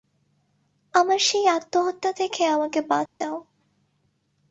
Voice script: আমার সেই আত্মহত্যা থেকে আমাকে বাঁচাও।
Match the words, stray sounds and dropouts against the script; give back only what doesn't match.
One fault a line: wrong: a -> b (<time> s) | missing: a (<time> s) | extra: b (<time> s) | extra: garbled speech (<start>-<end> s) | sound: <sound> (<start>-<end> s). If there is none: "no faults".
sound: dropout (3.1-3.2 s)